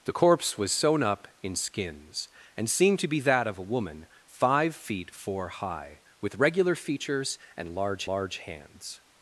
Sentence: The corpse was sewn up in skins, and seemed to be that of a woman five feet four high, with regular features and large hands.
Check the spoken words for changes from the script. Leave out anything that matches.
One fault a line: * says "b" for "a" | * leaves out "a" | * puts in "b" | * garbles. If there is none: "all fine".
* puts in "large"